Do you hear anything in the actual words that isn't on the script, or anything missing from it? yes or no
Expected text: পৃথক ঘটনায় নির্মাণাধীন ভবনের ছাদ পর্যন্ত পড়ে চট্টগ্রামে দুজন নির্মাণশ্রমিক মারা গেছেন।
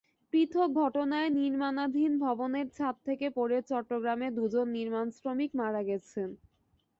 yes